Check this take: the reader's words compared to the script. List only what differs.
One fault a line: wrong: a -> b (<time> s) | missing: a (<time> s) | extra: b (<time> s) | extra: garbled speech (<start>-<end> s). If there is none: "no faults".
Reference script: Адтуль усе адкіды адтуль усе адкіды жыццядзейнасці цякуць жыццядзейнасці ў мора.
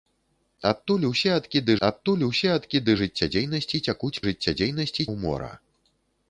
no faults